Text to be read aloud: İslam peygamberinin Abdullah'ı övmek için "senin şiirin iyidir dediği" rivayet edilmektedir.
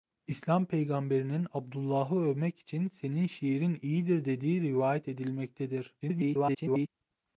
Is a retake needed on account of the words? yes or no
yes